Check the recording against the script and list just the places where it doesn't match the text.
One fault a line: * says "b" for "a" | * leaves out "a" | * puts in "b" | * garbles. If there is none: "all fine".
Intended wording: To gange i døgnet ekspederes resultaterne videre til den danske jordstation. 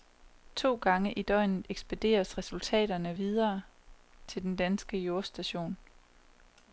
all fine